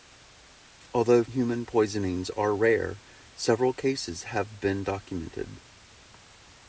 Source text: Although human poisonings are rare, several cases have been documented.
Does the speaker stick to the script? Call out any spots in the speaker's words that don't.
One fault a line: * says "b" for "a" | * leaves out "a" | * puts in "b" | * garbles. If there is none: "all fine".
all fine